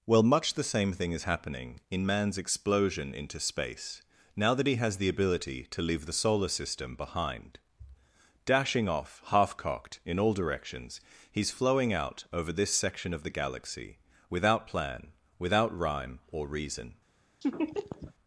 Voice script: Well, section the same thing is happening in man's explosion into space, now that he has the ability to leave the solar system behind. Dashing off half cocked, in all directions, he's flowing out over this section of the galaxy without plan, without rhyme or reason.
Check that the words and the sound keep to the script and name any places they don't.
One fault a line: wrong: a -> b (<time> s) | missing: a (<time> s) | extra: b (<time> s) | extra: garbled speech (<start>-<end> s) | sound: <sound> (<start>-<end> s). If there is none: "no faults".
wrong: section -> much (0.2 s)
sound: laugh (17.4-18.1 s)